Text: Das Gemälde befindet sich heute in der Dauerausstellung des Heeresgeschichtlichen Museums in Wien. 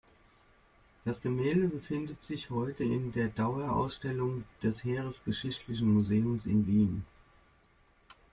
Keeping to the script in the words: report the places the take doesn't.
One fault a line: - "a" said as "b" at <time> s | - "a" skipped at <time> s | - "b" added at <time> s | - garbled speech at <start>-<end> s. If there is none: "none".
none